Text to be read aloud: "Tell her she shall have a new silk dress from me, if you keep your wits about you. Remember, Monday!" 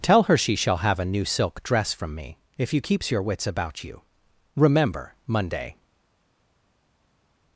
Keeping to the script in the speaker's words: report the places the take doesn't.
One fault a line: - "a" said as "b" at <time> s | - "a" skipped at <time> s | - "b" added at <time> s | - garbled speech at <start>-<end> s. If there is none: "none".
- "keep" said as "keeps" at 2.8 s